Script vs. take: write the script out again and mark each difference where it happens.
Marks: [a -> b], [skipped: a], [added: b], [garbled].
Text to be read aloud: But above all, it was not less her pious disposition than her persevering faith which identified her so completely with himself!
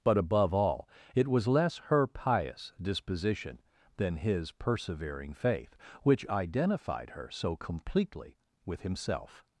But above all, it was [skipped: not] less her pious disposition than [her -> his] persevering faith which identified her so completely with himself!